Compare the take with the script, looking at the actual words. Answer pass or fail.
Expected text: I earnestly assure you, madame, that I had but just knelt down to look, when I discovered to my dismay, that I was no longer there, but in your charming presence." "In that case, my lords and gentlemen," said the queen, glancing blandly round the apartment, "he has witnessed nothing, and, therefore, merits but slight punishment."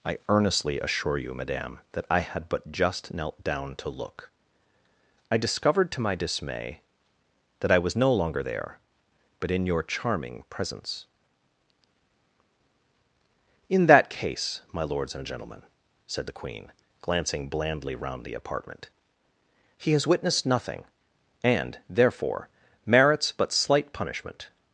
fail